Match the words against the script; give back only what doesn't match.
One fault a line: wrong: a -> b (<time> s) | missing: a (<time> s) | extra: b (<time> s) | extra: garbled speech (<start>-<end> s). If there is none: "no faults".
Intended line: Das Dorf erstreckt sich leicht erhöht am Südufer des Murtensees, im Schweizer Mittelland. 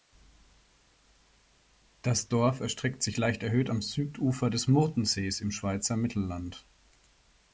no faults